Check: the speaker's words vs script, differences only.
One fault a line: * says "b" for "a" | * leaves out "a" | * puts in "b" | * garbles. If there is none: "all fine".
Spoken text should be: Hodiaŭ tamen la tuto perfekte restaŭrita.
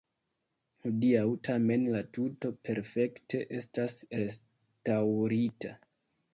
* puts in "estas"